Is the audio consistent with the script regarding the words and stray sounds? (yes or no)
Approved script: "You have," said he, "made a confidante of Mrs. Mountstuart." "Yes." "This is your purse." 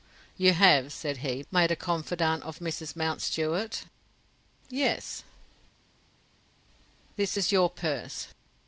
yes